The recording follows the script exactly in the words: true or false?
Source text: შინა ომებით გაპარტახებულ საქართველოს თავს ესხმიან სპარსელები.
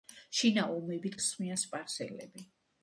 false